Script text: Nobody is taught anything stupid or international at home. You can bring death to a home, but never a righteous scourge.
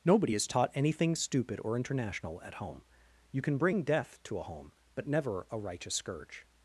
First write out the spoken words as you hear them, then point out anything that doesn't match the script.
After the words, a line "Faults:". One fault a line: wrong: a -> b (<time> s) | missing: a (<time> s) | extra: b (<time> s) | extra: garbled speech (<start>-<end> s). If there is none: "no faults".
Nobody is taught anything stupid or international at home. You can bring death to a home, but never a righteous scourge.
Faults:
no faults